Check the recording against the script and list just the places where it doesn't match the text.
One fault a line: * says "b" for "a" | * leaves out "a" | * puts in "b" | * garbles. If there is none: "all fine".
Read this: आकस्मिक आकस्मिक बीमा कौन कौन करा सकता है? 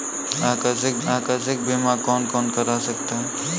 all fine